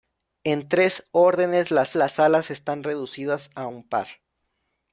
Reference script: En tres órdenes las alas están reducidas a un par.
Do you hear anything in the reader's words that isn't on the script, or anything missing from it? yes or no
yes